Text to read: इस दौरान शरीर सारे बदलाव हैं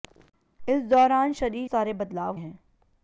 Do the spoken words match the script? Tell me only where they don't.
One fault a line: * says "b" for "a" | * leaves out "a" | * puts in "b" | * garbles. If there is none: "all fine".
all fine